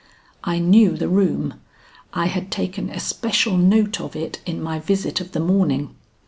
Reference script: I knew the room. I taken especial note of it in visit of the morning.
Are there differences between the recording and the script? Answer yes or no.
yes